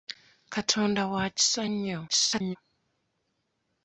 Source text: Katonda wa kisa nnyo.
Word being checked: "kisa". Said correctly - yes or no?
yes